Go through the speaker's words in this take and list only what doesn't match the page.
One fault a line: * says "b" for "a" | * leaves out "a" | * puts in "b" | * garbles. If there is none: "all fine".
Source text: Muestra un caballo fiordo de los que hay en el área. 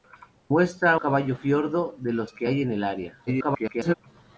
* leaves out "un"
* garbles